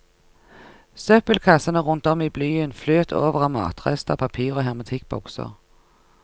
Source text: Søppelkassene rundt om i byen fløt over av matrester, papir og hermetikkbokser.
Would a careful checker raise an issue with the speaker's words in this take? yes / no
no